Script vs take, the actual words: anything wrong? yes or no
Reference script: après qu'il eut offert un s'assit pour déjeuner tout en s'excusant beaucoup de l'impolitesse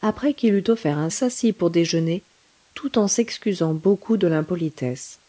no